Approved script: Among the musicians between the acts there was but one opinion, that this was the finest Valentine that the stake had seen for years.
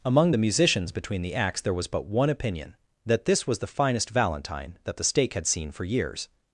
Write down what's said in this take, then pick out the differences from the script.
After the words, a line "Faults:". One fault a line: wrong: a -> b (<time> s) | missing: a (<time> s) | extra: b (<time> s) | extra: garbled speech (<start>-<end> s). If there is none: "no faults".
Among the musicians between the acts there was but one opinion, that this was the finest Valentine that the stake had seen for years.
Faults:
no faults